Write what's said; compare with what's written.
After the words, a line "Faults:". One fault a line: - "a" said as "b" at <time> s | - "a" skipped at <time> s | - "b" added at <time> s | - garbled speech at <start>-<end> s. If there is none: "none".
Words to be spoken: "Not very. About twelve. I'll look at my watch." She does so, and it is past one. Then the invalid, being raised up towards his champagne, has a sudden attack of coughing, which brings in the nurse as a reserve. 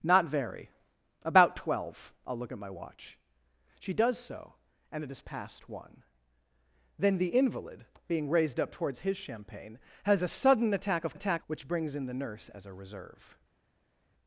"Not very. About twelve. I'll look at my watch." She does so, and it is past one. Then the invalid, being raised up towards his champagne, has a sudden attack of attack, which brings in the nurse as a reserve.
Faults:
- "coughing" said as "attack" at 11.1 s